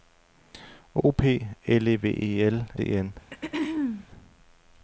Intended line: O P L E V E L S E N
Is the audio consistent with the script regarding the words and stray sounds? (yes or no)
no